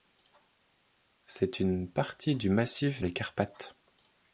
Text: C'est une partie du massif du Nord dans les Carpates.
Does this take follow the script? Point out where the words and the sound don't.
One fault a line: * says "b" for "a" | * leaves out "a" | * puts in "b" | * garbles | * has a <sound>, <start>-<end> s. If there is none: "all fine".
* leaves out "du Nord dans"